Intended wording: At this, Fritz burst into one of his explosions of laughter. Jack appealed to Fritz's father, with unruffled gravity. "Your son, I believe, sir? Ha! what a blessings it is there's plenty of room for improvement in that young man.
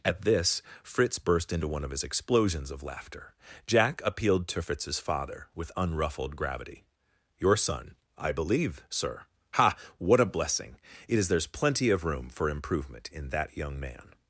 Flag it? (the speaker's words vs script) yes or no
yes